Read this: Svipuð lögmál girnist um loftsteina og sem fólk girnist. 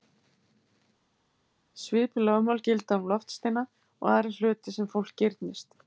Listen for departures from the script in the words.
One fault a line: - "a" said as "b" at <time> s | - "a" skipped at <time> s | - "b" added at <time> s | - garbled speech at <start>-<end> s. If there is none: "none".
- "girnist" said as "gilda" at 2.7 s
- "aðra hluti" added at 4.2 s